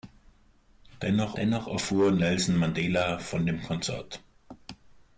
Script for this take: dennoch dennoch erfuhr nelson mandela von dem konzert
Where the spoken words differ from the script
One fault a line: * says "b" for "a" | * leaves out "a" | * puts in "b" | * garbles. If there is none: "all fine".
all fine